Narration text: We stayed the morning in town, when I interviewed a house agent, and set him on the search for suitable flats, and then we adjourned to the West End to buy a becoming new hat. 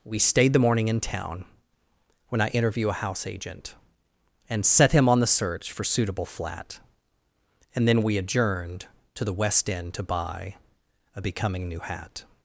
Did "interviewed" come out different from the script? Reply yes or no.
yes